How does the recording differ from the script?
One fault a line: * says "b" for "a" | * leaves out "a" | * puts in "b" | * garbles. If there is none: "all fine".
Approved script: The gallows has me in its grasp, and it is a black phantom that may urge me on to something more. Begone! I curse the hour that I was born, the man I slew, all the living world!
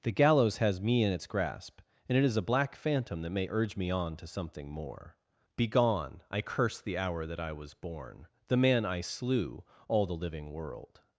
all fine